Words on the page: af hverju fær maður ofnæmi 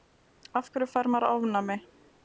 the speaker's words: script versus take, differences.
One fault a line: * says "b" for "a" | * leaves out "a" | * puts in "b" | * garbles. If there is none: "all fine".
all fine